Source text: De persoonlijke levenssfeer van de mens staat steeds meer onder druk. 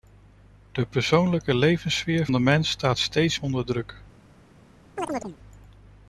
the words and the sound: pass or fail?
fail